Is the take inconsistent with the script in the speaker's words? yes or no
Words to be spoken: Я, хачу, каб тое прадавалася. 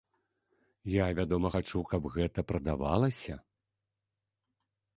yes